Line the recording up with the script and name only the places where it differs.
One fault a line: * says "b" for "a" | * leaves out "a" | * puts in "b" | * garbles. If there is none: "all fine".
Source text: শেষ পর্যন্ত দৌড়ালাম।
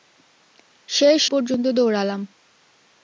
all fine